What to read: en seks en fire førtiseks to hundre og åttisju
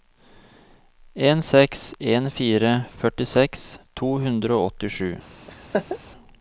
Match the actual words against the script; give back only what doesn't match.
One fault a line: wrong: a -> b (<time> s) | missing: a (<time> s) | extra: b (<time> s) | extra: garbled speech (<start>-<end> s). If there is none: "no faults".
no faults